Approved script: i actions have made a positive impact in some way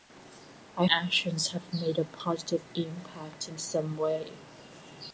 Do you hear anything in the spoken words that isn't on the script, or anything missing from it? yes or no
no